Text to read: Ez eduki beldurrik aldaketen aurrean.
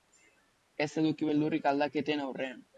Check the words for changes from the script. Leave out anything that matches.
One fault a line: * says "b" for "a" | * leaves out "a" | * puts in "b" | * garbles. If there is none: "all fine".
all fine